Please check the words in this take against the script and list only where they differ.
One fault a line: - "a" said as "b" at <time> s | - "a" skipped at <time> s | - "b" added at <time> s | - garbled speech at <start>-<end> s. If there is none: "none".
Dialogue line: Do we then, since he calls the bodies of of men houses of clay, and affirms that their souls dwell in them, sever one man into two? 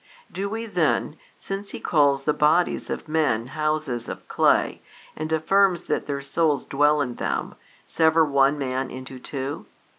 - "of" skipped at 3.1 s